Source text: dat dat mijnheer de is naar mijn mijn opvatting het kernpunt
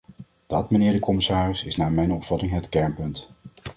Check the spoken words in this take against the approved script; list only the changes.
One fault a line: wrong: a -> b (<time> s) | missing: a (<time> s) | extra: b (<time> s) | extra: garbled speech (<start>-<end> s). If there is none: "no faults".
missing: dat (0.7 s)
extra: commissaris (1.0 s)
missing: mijn (2.1 s)